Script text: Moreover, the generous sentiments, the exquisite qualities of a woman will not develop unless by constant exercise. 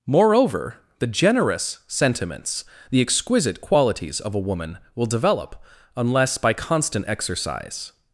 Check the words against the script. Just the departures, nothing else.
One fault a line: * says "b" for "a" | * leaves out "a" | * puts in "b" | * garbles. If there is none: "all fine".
* leaves out "not"